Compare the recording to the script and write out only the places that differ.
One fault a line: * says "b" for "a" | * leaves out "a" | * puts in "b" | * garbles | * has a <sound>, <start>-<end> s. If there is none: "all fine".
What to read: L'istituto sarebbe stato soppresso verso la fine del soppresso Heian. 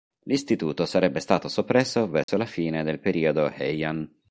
* has a dropout, 2.2-2.3 s
* says "periodo" for "soppresso"